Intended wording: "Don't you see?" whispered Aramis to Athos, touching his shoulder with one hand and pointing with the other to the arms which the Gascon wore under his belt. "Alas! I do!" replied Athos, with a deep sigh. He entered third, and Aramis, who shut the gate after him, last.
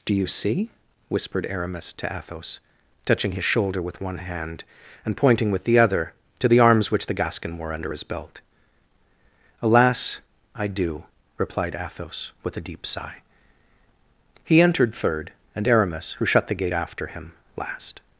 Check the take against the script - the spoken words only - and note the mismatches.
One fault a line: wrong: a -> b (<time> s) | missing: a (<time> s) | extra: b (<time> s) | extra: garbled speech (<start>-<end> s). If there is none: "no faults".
wrong: Don't -> Do (0.0 s)